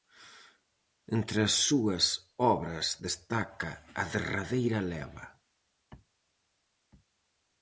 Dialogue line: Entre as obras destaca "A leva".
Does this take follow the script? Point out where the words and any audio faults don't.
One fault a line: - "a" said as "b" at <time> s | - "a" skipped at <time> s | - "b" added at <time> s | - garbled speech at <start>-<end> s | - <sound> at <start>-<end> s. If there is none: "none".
- "súas" added at 1.7 s
- "derradeira" added at 4.1 s